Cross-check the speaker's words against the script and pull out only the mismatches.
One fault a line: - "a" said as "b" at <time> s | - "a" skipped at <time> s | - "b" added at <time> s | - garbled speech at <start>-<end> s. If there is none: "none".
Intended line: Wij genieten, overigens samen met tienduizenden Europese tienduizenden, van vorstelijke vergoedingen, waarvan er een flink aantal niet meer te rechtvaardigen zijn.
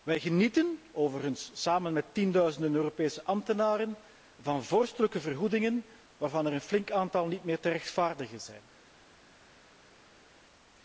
- "tienduizenden" said as "ambtenaren" at 3.2 s